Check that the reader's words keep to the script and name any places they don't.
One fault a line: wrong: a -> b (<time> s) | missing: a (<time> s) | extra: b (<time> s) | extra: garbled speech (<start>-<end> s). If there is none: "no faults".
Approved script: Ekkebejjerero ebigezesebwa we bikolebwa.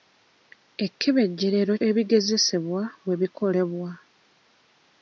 no faults